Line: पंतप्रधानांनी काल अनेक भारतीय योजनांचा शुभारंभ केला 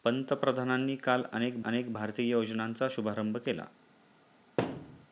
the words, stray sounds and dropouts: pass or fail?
fail